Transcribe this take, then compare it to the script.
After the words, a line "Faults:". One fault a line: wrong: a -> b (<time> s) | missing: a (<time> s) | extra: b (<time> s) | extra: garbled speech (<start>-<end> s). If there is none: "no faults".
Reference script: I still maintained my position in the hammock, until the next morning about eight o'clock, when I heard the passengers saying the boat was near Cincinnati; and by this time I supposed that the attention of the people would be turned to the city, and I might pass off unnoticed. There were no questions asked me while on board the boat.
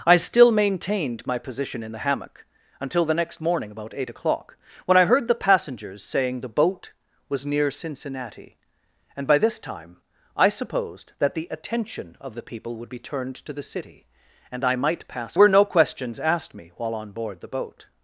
I still maintained my position in the hammock, until the next morning about eight o'clock, when I heard the passengers saying the boat was near Cincinnati; and by this time I supposed that the attention of the people would be turned to the city, and I might pass were no questions asked me while on board the boat.
Faults:
missing: off unnoticed There (15.4 s)